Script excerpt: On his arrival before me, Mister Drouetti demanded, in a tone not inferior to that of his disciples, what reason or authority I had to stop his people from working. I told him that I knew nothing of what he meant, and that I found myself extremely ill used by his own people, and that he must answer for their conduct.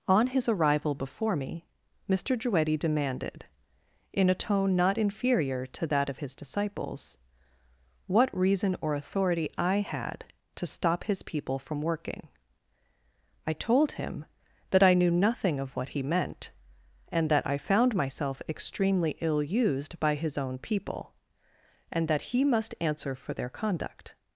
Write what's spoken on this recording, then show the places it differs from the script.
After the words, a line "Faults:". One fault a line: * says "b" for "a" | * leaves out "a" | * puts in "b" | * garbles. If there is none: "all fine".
On his arrival before me, Mister Drouetti demanded, in a tone not inferior to that of his disciples, what reason or authority I had to stop his people from working. I told him that I knew nothing of what he meant, and that I found myself extremely ill used by his own people, and that he must answer for their conduct.
Faults:
all fine